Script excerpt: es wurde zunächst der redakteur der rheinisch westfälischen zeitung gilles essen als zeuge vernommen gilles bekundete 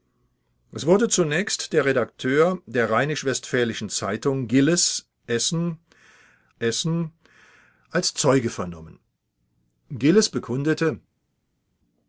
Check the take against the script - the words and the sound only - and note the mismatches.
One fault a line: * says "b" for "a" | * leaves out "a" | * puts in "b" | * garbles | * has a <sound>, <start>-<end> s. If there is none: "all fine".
* puts in "essen"